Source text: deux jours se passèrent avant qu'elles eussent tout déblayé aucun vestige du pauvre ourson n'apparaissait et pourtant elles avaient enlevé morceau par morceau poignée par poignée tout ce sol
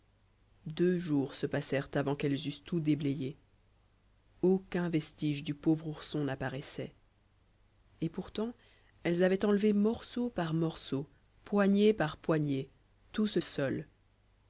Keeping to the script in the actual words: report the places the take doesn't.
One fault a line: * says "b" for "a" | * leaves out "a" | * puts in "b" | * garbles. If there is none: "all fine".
all fine